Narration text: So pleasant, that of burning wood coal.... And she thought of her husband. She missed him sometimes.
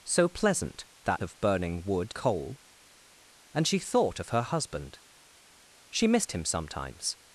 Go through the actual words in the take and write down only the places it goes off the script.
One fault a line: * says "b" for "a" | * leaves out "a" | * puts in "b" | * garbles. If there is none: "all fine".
all fine